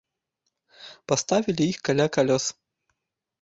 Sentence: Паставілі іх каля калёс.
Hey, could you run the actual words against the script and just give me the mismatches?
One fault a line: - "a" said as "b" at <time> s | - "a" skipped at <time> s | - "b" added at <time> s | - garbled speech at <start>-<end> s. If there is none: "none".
none